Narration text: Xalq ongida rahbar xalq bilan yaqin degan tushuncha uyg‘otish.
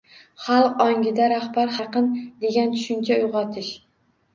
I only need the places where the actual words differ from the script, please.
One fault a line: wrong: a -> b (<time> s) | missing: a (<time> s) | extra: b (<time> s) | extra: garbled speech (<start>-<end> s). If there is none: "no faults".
missing: xalq bilan (1.7 s)